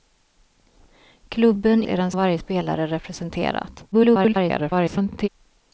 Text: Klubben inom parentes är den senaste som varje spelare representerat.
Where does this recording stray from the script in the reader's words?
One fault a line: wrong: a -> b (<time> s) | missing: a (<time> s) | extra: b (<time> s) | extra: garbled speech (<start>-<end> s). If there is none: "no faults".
missing: inom parentes (1.8 s)
missing: senaste som (2.1 s)
extra: garbled speech (3.9-5.3 s)